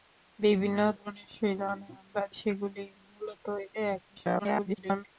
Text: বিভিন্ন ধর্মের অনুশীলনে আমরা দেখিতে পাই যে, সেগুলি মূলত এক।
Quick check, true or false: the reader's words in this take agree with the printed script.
false